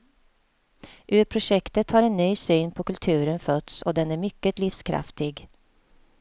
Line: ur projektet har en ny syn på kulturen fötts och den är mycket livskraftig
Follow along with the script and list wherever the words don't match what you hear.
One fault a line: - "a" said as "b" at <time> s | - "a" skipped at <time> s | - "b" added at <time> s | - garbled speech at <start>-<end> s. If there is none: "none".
none